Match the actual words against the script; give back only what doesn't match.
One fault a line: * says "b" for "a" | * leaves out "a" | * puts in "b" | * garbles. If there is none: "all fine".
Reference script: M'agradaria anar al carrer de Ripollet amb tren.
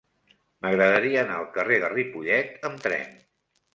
all fine